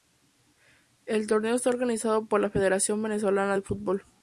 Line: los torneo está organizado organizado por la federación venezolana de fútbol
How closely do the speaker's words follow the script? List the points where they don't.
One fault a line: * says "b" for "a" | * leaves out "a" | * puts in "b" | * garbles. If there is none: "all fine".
* says "el" for "los"
* leaves out "organizado"